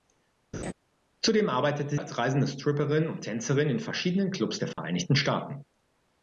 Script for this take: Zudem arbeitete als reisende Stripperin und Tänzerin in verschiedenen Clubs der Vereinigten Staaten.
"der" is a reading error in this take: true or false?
false